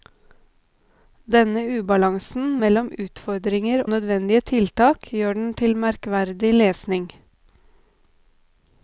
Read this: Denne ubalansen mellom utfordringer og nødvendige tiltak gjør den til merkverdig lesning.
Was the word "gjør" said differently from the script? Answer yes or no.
no